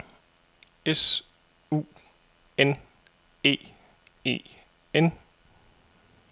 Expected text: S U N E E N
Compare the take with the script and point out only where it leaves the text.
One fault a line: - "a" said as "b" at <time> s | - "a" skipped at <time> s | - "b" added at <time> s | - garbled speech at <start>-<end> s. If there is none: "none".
none